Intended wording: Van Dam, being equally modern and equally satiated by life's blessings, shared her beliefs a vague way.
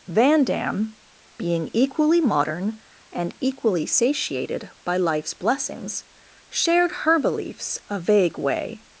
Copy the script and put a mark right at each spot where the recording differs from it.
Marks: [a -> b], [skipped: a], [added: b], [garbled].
Van Dam, being equally modern and equally satiated by life's blessings, shared her beliefs a vague way.